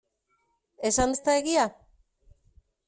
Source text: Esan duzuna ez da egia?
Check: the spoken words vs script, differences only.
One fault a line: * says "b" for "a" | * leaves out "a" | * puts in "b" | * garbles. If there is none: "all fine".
* leaves out "duzuna"